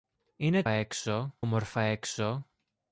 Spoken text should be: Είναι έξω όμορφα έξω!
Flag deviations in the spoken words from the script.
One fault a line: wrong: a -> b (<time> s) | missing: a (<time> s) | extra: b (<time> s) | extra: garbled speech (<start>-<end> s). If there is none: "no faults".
no faults